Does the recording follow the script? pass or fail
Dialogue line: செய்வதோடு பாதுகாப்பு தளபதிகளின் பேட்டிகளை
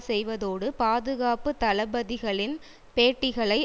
pass